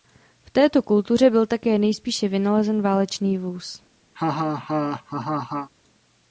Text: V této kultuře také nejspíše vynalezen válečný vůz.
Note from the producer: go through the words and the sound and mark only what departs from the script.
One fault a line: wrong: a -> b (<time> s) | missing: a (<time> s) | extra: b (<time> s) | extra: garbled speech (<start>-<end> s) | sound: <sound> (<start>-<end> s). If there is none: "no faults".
extra: byl (1.3 s)
sound: laugh (4.2-5.7 s)